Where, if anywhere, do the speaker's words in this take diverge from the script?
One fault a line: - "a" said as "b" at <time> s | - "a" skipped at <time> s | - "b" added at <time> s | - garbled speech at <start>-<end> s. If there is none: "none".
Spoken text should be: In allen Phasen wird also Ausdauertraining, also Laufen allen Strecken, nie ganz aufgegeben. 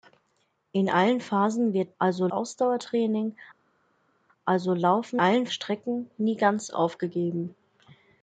none